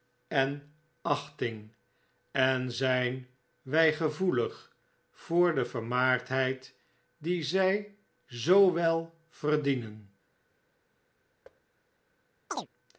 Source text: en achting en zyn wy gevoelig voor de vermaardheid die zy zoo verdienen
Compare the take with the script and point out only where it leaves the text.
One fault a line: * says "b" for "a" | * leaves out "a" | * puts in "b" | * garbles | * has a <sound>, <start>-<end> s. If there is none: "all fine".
* puts in "wel"
* has a thud, 11.4-11.6 s
* has a chirp, 12.5-12.7 s